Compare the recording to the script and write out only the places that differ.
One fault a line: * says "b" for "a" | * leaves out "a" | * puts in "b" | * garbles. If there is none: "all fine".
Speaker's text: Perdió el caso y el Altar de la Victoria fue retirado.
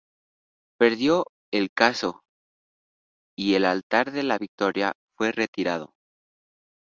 all fine